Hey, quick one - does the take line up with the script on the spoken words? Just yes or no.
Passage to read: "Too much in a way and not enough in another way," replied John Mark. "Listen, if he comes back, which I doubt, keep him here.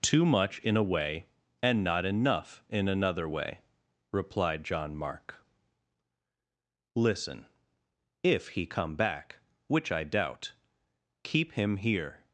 no